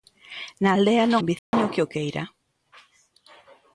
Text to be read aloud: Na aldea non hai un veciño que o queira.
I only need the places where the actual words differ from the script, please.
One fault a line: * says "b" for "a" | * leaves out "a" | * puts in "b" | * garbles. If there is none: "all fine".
* leaves out "hai"